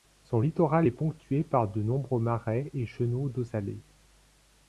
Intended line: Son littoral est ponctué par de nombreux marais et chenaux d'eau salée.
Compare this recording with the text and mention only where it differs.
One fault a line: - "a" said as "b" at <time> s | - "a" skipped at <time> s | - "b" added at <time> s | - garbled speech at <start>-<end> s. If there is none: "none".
none